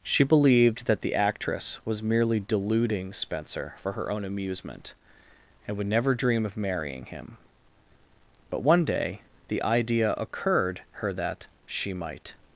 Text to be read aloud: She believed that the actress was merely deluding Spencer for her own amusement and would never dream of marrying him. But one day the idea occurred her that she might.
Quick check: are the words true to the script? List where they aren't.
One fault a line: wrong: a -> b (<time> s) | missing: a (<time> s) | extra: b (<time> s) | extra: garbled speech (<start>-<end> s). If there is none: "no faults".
no faults